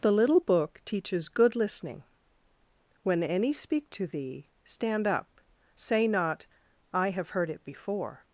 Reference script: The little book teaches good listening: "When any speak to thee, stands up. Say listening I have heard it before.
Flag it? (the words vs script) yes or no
yes